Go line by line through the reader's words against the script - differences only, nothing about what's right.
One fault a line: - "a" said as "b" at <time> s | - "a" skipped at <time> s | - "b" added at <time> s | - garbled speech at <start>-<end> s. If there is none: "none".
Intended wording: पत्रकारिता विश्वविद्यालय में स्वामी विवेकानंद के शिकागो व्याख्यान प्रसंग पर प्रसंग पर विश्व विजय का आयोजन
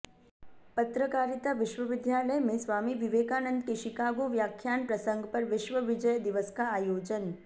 - "प्रसंग पर" skipped at 5.4 s
- "दिवस" added at 6.2 s